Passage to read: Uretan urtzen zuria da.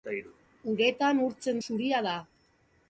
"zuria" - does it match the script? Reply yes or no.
yes